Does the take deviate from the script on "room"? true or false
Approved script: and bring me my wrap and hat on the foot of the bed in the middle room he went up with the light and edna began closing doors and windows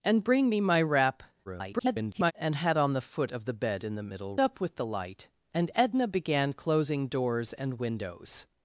true